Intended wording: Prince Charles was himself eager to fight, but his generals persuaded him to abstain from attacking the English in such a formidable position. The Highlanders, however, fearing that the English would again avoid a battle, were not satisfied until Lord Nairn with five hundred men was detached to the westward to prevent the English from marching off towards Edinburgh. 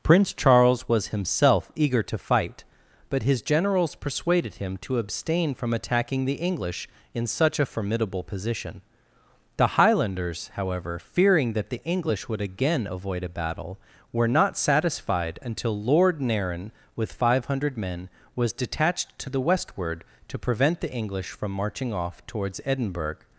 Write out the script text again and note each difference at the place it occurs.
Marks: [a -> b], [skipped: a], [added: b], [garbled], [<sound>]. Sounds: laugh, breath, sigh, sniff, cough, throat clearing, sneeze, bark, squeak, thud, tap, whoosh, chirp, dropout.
Prince Charles was himself eager to fight, but his generals persuaded him to abstain from attacking the English in such a formidable position. The Highlanders, however, fearing that the English would again avoid a battle, were not satisfied until Lord Nairn with five hundred men was detached to the westward to prevent the English from marching off towards Edinburgh.